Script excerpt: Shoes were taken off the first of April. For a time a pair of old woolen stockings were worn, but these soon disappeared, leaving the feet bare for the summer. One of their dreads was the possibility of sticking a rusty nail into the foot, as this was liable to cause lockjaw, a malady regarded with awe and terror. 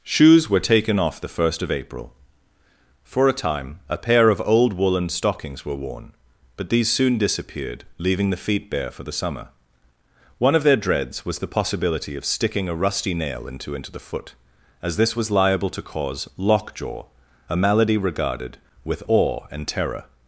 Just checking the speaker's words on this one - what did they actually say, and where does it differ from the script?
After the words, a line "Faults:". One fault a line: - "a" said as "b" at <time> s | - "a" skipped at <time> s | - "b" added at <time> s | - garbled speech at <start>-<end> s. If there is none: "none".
Shoes were taken off the first of April. For a time a pair of old woolen stockings were worn, but these soon disappeared, leaving the feet bare for the summer. One of their dreads was the possibility of sticking a rusty nail into into the foot, as this was liable to cause lockjaw, a malady regarded with awe and terror.
Faults:
- "into" added at 13.8 s